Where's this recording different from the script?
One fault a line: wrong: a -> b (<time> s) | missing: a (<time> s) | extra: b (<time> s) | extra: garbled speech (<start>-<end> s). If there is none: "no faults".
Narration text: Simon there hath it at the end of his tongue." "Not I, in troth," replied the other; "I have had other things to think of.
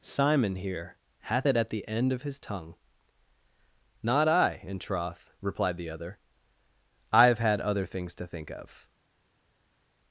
wrong: there -> here (0.6 s)